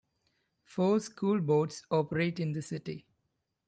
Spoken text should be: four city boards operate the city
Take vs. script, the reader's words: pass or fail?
fail